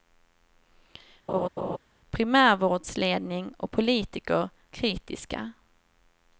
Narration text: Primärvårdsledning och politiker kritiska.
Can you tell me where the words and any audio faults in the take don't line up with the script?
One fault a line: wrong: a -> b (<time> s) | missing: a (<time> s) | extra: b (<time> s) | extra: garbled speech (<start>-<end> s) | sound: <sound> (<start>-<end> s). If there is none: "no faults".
sound: laugh (1.3-1.8 s)